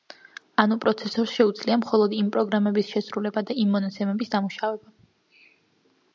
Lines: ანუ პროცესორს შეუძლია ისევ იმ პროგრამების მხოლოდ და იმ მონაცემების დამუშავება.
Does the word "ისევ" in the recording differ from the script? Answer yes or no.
yes